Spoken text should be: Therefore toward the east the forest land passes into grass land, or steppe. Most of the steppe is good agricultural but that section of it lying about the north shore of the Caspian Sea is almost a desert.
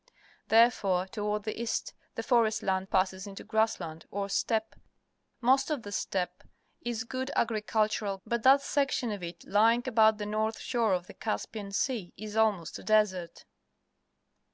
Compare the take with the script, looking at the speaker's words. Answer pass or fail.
pass